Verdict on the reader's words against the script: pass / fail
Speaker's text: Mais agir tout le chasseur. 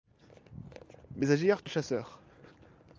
pass